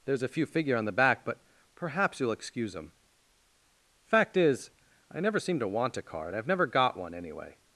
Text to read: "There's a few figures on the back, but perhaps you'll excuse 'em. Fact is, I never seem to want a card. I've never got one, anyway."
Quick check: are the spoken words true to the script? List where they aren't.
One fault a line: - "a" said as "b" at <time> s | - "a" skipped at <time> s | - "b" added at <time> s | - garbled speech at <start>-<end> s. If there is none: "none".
- "figures" said as "figure" at 0.5 s